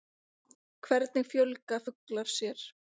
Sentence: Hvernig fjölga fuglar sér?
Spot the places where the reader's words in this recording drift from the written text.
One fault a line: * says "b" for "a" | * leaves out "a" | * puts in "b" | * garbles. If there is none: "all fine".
all fine